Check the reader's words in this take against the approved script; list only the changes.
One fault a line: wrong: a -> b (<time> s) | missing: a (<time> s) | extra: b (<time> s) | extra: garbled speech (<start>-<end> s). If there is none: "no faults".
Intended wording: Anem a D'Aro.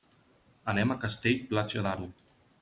extra: Castell Platja (1.0 s)